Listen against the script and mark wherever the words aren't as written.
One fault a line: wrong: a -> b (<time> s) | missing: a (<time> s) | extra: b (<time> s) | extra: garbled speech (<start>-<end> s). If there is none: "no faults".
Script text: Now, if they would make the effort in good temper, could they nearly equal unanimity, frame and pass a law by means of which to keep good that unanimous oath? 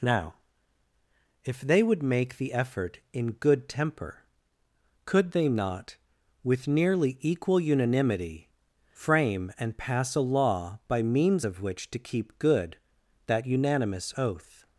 extra: not with (5.5 s)